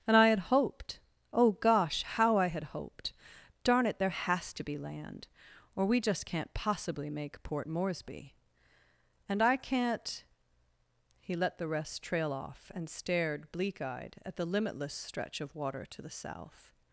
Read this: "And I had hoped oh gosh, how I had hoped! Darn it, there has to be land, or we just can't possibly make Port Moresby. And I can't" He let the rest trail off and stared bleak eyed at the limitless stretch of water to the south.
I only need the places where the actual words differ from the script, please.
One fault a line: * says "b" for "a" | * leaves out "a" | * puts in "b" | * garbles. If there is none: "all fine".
all fine